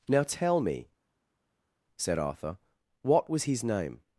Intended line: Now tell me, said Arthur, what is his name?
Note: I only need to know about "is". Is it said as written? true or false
false